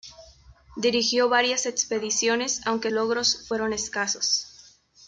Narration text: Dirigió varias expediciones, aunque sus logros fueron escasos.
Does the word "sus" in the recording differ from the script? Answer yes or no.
yes